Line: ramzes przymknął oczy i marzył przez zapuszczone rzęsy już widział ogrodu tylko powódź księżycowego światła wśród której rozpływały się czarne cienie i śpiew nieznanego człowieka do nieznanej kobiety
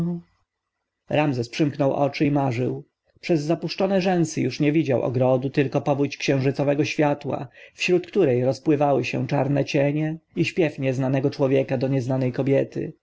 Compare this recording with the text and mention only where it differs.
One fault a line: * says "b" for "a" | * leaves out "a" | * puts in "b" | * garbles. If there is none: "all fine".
* puts in "nie"